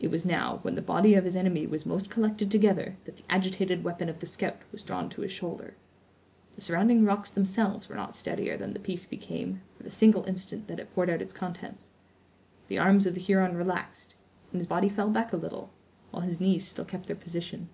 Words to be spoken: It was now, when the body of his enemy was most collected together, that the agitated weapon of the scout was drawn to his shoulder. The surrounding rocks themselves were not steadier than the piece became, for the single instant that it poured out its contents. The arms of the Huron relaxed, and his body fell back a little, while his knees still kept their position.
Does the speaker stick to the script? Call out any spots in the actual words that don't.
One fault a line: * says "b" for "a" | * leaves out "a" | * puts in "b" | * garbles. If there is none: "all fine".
all fine